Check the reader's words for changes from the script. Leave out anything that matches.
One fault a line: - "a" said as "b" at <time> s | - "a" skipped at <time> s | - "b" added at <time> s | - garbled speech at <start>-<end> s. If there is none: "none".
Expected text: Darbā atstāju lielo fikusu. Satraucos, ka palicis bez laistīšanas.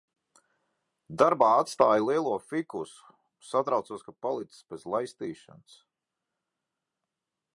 none